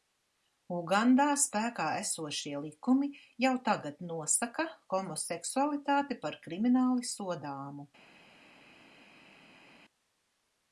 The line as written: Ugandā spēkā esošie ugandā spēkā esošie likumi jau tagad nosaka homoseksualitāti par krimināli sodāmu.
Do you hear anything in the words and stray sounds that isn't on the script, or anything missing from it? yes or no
yes